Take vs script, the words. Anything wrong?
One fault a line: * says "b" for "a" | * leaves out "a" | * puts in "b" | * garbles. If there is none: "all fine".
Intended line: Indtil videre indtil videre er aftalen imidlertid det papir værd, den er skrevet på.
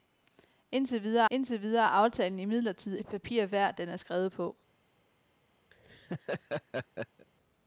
all fine